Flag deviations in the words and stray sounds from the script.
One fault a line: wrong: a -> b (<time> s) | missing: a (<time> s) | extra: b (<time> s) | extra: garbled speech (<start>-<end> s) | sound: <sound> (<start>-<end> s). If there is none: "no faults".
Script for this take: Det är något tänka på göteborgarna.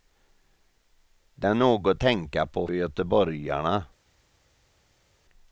no faults